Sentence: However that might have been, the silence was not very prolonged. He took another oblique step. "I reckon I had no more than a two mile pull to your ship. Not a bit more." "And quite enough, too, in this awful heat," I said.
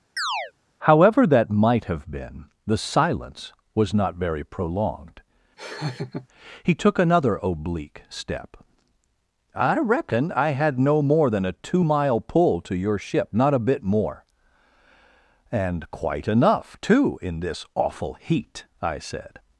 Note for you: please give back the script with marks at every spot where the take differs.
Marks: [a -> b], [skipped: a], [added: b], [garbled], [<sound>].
[chirp] However that might have been, the silence was not very prolonged. [laugh] He took another oblique step. "I reckon I had no more than a two mile pull to your ship. Not a bit more." "And quite enough, too, in this awful heat," I said.